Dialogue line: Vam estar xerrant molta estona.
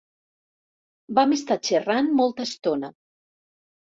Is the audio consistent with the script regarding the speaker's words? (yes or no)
yes